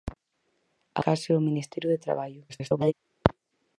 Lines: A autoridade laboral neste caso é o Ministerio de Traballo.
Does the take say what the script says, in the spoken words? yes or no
no